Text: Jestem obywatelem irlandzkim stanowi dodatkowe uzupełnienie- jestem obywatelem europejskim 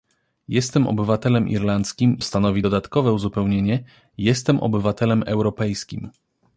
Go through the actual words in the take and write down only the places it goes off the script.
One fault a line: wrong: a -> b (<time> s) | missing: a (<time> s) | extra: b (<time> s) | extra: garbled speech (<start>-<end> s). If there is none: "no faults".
no faults